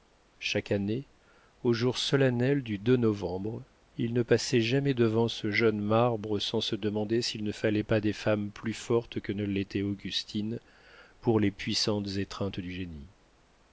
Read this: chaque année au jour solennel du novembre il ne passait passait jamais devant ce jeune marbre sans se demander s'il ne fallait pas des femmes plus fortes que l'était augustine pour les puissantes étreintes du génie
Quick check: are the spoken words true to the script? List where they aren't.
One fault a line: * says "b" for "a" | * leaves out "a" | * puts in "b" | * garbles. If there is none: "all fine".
* leaves out "passait"
* puts in "ne"